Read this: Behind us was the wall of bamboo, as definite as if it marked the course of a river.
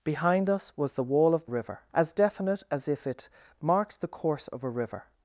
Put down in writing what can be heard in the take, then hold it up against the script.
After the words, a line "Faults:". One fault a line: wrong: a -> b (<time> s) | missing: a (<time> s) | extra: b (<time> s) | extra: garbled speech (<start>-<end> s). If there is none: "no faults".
Behind us was the wall of river, as definite as if it marked the course of a river.
Faults:
wrong: bamboo -> river (1.4 s)